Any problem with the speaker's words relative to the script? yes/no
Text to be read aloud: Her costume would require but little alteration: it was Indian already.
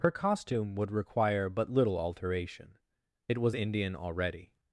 no